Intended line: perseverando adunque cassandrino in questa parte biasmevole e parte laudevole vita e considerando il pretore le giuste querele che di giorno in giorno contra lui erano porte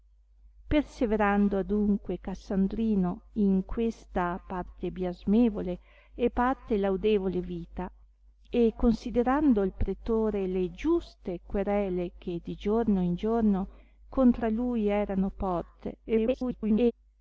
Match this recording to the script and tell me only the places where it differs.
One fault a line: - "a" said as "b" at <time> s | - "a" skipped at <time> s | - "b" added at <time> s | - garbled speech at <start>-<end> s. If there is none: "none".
- garbled speech at 16.0-16.9 s